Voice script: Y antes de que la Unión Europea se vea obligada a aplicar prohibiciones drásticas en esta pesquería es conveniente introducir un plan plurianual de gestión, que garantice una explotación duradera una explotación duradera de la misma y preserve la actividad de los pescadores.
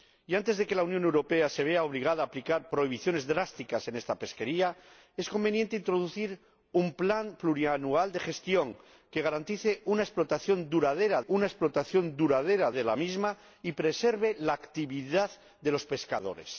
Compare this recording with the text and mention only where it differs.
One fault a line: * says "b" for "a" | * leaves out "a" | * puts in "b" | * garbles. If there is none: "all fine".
all fine